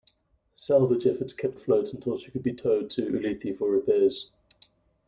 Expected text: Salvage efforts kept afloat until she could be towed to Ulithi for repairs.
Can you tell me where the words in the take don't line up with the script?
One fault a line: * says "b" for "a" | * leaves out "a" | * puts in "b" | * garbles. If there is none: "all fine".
all fine